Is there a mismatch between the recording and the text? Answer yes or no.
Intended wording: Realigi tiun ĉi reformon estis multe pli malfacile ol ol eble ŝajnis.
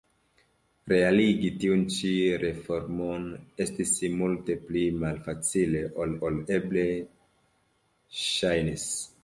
no